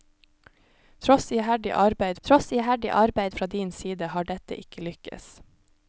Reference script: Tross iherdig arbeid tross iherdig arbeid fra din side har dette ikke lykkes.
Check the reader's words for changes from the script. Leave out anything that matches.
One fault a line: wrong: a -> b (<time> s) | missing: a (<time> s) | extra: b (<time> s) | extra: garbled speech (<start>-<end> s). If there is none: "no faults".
no faults